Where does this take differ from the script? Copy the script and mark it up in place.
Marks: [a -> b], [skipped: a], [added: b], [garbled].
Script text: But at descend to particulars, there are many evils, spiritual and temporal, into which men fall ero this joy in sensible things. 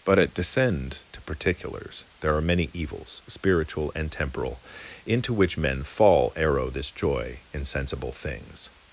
But at descend to particulars, there are many evils, spiritual and temporal, into which men fall ero this joy in sensible things.